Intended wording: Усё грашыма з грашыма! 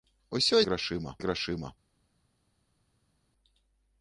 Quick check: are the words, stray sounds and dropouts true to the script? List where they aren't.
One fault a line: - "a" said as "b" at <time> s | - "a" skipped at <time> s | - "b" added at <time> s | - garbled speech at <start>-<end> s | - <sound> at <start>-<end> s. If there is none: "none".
none